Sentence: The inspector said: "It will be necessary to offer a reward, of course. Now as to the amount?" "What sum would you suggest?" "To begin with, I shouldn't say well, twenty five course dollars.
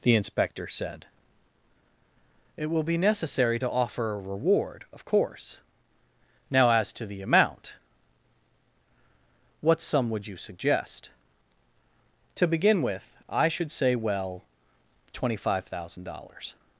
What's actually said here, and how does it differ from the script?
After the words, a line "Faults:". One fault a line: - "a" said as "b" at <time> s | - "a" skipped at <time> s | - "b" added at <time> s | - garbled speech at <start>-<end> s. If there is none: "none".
The inspector said: "It will be necessary to offer a reward, of course. Now as to the amount?" "What sum would you suggest?" "To begin with, I should say well, twenty five thousand dollars.
Faults:
- "shouldn't" said as "should" at 13.5 s
- "course" said as "thousand" at 15.7 s